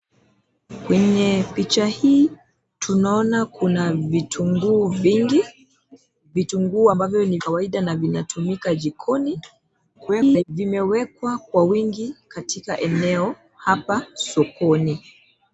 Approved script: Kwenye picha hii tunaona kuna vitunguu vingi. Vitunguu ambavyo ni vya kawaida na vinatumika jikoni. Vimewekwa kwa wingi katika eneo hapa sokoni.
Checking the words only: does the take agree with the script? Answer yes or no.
no